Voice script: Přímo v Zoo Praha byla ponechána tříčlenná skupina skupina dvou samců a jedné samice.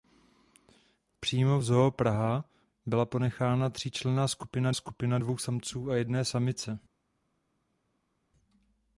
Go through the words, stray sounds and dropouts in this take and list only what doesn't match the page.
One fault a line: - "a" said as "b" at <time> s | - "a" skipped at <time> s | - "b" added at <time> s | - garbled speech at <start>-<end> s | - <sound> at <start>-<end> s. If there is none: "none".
none